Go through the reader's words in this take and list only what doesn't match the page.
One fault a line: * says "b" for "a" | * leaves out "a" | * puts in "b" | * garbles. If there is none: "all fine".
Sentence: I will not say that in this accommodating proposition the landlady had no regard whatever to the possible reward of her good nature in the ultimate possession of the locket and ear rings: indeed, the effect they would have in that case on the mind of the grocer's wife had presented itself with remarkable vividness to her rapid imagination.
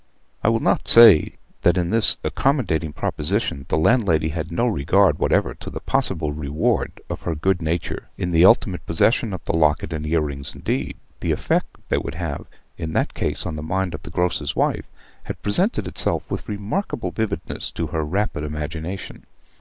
all fine